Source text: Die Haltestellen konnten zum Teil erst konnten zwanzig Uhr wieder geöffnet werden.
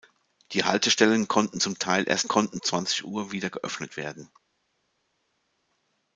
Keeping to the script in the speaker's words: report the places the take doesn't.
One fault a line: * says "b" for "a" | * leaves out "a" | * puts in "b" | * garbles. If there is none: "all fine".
all fine